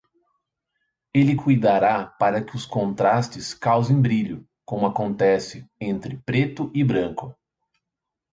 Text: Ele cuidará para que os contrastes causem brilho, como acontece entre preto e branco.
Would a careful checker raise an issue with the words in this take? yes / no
no